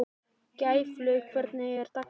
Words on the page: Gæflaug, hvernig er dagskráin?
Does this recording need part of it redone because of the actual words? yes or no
no